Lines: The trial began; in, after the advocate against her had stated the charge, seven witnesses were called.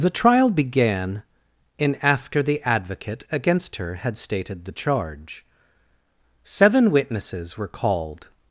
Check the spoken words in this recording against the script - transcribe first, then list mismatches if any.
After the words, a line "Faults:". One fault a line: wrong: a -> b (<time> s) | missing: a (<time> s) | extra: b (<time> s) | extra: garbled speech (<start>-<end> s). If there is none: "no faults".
The trial began; in, after the advocate against her had stated the charge, seven witnesses were called.
Faults:
no faults